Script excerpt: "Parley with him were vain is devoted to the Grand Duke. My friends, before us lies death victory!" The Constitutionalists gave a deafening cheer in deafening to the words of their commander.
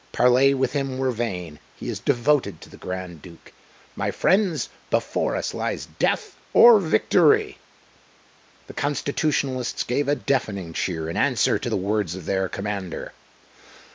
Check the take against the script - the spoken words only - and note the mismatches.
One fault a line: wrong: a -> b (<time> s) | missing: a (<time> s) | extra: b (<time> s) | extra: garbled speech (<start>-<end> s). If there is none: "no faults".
extra: he (1.8 s)
extra: or (6.5 s)
wrong: deafening -> answer (11.2 s)